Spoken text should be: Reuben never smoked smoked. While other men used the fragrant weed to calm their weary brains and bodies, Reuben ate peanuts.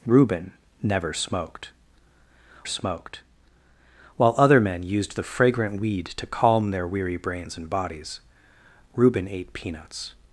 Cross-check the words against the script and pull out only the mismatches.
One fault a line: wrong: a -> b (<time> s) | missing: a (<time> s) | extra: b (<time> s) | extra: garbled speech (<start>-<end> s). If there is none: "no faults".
no faults